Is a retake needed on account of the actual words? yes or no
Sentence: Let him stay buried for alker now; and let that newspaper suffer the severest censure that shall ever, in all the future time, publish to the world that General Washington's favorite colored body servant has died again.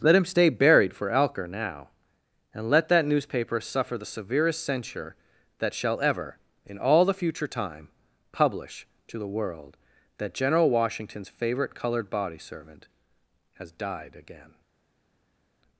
no